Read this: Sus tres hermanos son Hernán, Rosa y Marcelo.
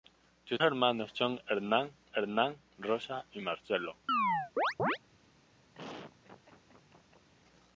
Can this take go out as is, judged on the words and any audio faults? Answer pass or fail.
fail